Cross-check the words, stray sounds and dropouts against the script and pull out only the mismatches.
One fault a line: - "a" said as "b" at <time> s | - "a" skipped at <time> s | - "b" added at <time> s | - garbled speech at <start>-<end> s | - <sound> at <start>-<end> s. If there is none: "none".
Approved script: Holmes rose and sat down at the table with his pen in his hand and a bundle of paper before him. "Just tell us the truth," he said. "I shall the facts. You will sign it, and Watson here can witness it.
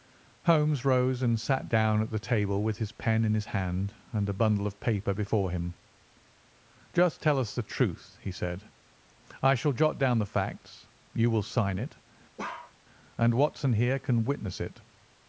- "jot down" added at 9.7 s
- bark at 12.4-12.7 s